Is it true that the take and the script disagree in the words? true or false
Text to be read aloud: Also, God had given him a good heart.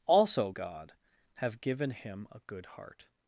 true